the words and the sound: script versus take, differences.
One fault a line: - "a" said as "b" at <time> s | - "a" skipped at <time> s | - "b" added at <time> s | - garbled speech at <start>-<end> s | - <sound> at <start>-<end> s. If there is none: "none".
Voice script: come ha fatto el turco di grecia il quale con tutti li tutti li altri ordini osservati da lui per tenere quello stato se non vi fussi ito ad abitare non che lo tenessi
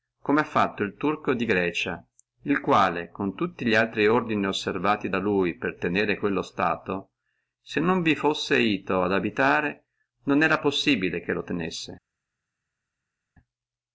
- "tutti li" skipped at 3.8 s
- "era possibile" added at 10.4 s